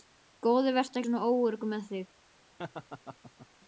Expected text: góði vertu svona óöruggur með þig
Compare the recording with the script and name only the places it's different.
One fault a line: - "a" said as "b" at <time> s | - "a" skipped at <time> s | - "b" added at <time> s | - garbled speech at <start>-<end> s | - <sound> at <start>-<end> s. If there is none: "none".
- laugh at 2.6-3.5 s